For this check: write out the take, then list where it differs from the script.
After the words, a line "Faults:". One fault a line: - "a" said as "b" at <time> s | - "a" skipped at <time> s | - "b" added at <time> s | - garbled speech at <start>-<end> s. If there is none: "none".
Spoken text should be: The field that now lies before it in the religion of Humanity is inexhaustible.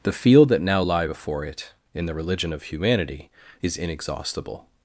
The field that now lie before it in the religion of Humanity is inexhaustible.
Faults:
- "lies" said as "lie" at 0.8 s